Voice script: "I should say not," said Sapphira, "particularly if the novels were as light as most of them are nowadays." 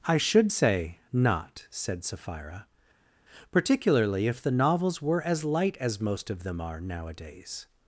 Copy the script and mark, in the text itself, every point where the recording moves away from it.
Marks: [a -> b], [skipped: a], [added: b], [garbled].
"I should say not," said Sapphira, "particularly if the novels were as light as most of them are nowadays."